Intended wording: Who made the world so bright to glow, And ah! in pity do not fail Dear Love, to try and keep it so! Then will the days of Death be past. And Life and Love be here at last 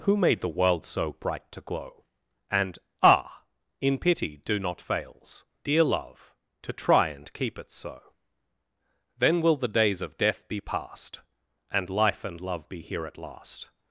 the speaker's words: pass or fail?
fail